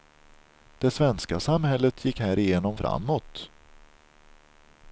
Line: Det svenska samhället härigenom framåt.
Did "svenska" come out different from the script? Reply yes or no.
no